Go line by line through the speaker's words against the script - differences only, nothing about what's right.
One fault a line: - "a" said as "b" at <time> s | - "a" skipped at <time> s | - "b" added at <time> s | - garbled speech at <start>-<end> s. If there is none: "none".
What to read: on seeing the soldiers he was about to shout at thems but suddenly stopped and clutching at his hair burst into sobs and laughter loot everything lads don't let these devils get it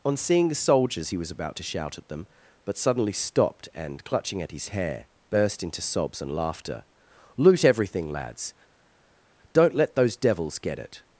- "thems" said as "them" at 2.1 s
- "these" said as "those" at 9.9 s